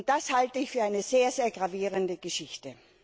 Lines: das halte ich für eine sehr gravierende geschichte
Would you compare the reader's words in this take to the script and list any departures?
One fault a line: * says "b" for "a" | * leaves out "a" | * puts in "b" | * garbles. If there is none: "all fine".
all fine